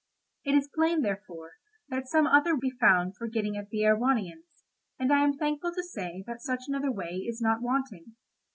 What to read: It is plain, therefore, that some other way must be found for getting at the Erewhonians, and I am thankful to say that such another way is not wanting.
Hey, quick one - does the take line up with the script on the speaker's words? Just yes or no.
no